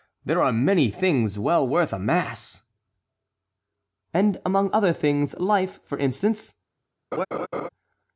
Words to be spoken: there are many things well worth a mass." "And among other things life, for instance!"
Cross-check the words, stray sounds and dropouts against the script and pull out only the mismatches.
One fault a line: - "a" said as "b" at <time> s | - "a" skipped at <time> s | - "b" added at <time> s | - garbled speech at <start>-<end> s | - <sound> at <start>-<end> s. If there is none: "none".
- laugh at 7.1-7.7 s